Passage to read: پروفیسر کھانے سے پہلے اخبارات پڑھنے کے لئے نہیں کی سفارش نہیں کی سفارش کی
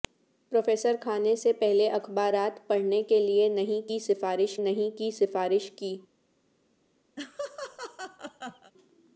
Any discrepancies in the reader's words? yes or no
no